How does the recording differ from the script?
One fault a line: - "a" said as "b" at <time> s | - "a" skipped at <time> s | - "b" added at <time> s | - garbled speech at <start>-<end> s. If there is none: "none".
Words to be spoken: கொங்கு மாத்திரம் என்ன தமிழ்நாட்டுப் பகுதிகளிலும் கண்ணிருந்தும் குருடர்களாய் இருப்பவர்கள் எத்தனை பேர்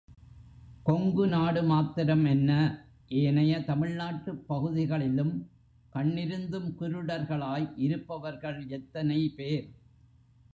- "நாடு" added at 1.3 s
- "ஏனைய" added at 3.1 s